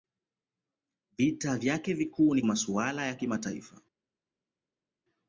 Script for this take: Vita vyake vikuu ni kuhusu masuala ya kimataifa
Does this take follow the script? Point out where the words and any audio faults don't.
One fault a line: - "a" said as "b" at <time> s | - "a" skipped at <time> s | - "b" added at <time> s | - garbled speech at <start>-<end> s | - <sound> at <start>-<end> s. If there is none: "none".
- "kuhusu" skipped at 2.4 s